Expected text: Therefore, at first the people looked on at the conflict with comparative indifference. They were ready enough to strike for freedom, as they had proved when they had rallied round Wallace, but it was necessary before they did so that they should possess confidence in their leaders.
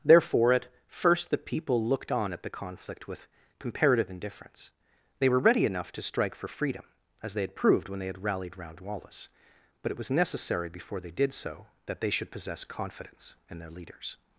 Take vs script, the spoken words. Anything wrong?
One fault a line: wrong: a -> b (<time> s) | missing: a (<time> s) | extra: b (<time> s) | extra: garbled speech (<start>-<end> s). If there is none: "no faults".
no faults